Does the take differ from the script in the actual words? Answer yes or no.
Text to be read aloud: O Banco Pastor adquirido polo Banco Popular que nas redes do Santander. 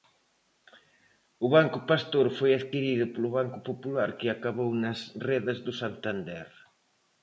yes